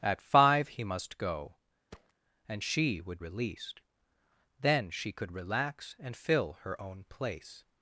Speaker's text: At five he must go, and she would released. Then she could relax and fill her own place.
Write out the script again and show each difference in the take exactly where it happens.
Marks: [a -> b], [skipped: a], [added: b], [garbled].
At five he must go, and she would released. Then she could relax and fill her own place.